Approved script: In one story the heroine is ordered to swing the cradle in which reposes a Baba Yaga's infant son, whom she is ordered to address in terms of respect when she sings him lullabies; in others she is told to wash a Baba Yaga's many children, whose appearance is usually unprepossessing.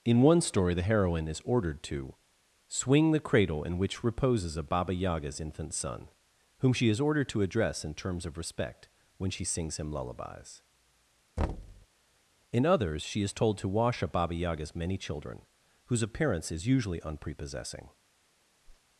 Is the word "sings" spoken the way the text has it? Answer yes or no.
yes